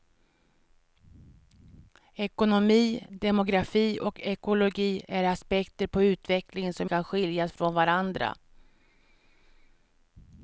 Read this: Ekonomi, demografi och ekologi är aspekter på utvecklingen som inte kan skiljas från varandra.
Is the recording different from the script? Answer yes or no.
yes